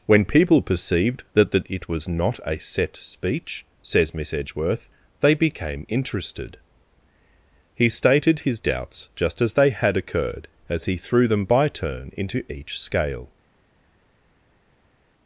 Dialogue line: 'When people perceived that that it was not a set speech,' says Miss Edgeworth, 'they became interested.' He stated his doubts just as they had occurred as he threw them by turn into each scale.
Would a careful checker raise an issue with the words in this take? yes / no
no